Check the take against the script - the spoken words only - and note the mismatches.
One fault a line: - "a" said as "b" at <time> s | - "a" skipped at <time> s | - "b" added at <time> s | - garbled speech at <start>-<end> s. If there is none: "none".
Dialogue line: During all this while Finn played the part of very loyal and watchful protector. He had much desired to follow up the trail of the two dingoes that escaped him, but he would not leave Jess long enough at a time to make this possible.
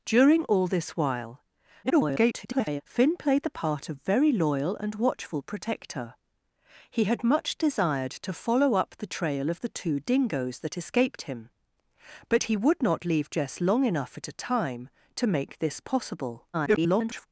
- garbled speech at 1.8-2.8 s
- garbled speech at 16.5-17.3 s